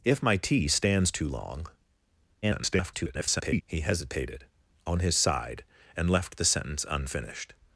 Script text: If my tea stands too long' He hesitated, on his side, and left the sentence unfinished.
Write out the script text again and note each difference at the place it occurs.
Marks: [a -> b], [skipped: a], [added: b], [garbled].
If my tea stands too long' [garbled] He hesitated, on his side, and left the sentence unfinished.